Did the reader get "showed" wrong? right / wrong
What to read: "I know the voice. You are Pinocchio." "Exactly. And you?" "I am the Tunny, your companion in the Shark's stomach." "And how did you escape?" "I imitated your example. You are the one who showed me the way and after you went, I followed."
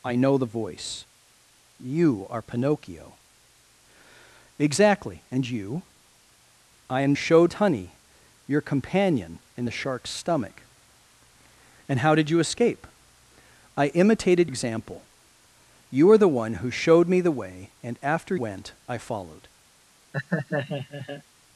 right